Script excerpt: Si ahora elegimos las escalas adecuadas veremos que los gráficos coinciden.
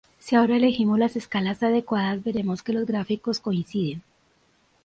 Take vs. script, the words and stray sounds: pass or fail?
pass